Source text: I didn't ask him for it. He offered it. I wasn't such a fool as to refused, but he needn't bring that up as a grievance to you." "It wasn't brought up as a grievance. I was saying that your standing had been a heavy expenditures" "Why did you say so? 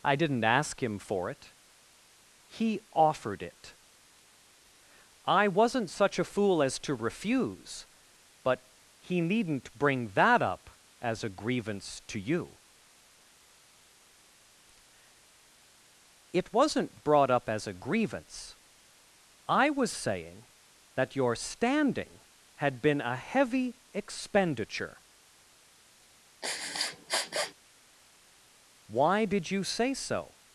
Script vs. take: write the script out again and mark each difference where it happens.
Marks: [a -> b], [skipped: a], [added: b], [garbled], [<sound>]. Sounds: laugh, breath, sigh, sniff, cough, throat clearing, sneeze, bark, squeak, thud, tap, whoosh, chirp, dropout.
I didn't ask him for it. He offered it. I wasn't such a fool as to [refused, -> refuse] but he needn't bring that up as a grievance to you." "It wasn't brought up as a grievance. I was saying that your standing had been a heavy [expenditures" -> expenditure] [sniff] "Why did you say so?